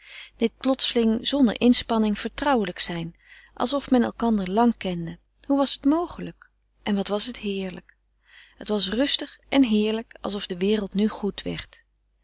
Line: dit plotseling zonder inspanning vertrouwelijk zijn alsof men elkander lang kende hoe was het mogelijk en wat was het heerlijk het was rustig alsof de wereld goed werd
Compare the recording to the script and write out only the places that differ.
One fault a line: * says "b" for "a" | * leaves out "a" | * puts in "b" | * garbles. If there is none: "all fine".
* puts in "en heerlijk"
* puts in "nu"